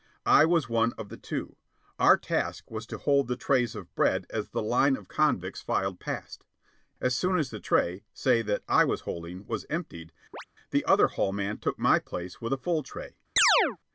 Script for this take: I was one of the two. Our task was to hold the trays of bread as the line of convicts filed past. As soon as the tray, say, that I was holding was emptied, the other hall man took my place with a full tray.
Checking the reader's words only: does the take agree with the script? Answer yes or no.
yes